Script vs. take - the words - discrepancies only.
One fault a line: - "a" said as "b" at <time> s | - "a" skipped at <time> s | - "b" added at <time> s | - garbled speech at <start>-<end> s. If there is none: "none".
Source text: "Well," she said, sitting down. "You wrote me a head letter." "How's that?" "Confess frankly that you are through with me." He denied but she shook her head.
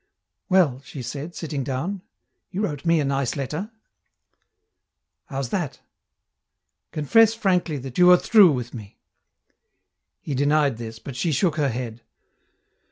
- "head" said as "nice" at 3.0 s
- "this" added at 10.8 s